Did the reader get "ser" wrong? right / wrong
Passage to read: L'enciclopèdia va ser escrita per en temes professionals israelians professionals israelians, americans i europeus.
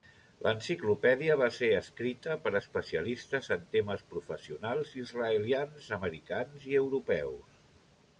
right